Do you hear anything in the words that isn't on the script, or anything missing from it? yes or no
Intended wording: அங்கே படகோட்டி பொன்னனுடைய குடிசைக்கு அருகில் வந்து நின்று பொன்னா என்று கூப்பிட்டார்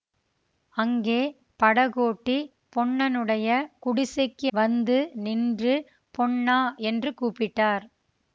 yes